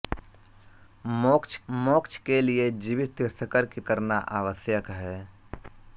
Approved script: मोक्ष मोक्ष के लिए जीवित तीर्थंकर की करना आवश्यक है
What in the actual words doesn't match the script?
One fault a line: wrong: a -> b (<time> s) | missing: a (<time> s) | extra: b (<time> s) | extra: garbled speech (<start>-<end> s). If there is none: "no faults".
no faults